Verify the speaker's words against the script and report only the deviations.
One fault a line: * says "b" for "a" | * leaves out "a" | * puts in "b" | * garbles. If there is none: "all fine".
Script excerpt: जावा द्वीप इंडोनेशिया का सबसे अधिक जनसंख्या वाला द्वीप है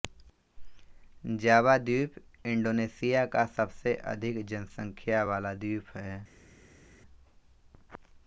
all fine